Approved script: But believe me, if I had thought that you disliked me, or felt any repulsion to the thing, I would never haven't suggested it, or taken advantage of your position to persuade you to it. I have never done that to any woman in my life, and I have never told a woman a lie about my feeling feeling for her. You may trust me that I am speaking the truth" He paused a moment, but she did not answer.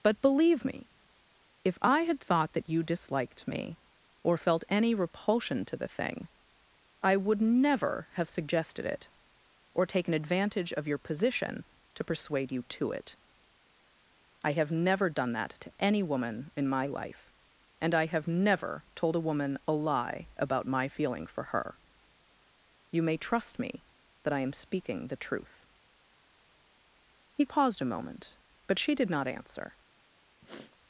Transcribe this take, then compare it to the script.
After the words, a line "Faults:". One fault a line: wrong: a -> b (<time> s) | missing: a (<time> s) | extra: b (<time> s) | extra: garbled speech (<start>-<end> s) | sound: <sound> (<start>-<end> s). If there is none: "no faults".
But believe me, if I had thought that you disliked me, or felt any repulsion to the thing, I would never have suggested it, or taken advantage of your position to persuade you to it. I have never done that to any woman in my life, and I have never told a woman a lie about my feeling for her. You may trust me that I am speaking the truth" He paused a moment, but she did not answer.
Faults:
wrong: haven't -> have (8.1 s)
missing: feeling (21.3 s)
sound: sniff (30.4-30.8 s)